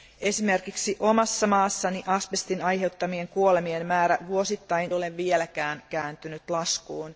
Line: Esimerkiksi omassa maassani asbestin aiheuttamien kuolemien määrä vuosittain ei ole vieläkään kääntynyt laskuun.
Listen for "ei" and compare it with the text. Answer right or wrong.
wrong